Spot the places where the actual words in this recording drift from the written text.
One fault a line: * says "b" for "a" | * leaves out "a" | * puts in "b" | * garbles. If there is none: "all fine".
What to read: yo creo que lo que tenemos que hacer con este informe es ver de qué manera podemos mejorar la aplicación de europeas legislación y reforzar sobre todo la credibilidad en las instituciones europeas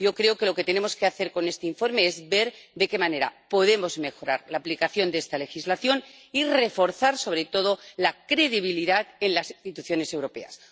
* says "esta" for "europeas"